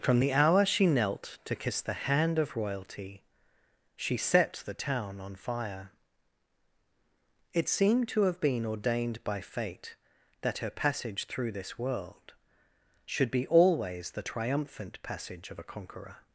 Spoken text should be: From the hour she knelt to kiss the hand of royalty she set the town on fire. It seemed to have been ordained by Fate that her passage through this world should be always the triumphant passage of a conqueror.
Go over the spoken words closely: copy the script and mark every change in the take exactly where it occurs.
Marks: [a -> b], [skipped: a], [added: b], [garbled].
From the hour she knelt to kiss the hand of royalty she set the town on fire. It seemed to have been ordained by Fate that her passage through this world should be always the triumphant passage of a conqueror.